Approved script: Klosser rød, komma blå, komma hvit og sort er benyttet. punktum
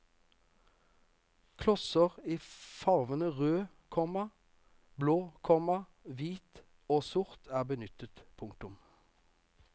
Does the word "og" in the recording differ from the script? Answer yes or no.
no